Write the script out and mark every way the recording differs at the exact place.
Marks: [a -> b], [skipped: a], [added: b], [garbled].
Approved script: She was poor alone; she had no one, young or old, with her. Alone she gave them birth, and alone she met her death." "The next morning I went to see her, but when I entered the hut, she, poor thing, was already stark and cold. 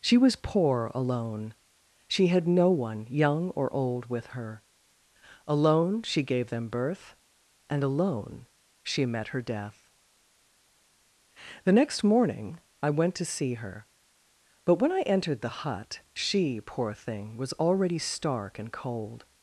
She was poor alone; she had no one, young or old, with her. Alone she gave them birth, and alone she met her death." "The next morning I went to see her, but when I entered the hut, she, poor thing, was already stark and cold.